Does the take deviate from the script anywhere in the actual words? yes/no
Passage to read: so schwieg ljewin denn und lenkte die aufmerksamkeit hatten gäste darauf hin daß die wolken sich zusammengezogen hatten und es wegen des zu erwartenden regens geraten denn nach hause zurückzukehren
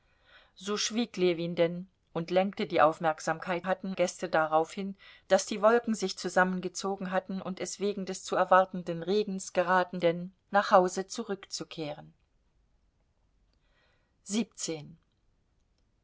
no